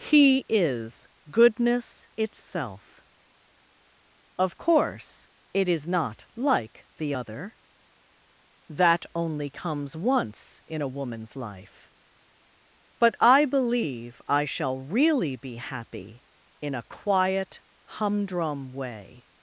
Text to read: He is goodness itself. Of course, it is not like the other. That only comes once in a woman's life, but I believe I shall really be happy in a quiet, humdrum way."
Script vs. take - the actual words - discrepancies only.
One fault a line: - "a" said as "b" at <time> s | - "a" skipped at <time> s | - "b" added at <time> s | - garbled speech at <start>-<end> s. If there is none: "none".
none